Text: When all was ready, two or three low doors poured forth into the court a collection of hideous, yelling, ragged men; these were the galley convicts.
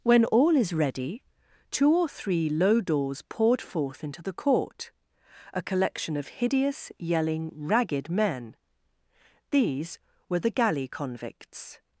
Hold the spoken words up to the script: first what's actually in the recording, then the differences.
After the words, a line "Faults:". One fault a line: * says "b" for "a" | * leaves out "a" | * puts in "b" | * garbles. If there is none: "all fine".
When all is ready, two or three low doors poured forth into the court a collection of hideous, yelling, ragged men; these were the galley convicts.
Faults:
* says "is" for "was"